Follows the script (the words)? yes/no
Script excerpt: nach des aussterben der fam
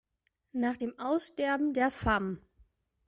no